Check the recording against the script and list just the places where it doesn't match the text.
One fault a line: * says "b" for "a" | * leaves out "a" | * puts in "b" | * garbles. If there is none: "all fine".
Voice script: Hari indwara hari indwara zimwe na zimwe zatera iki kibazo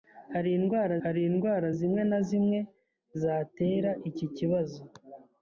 all fine